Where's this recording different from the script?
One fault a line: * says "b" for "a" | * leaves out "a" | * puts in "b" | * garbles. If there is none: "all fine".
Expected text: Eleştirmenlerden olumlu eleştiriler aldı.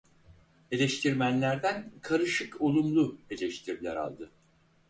* puts in "karışık"